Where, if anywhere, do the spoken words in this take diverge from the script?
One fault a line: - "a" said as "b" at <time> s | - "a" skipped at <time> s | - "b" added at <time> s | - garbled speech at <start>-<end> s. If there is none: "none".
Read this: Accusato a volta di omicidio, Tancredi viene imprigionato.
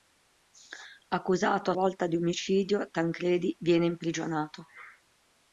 none